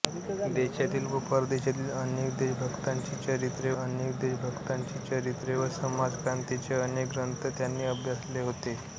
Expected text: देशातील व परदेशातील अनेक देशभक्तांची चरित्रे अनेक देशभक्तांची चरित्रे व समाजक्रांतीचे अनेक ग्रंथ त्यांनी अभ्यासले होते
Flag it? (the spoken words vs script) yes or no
no